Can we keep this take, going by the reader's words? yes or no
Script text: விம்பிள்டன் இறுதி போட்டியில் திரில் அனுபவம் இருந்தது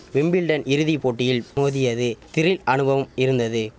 no